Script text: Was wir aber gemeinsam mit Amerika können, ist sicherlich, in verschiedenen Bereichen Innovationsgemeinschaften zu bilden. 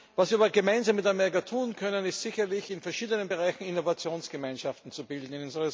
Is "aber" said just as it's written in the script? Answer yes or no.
yes